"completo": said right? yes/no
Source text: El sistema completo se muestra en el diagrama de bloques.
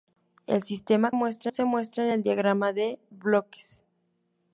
no